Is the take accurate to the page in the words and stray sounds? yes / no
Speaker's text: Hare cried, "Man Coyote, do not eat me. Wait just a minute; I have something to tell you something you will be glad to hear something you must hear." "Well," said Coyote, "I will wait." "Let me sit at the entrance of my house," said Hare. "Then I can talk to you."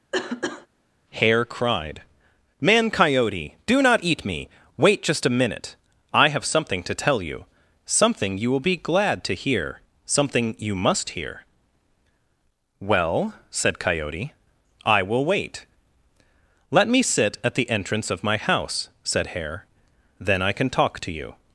no